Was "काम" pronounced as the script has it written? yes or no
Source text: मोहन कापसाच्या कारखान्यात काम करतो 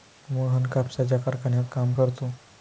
yes